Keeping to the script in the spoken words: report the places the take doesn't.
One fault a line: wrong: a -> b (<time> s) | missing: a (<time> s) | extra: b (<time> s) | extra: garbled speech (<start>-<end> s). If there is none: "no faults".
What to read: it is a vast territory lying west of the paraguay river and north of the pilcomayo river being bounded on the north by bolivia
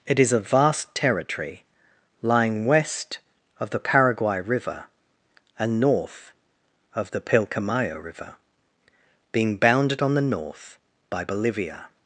no faults